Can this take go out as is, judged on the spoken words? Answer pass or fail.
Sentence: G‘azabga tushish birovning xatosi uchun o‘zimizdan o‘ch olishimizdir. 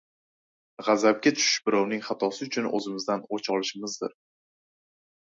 pass